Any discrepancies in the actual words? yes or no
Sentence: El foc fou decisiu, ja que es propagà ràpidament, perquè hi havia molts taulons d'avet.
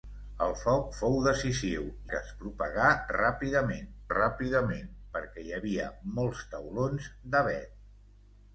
yes